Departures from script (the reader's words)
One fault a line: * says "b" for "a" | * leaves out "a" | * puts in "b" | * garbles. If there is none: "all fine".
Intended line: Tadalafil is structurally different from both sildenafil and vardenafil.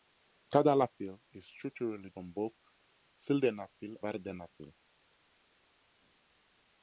* leaves out "different"
* leaves out "and"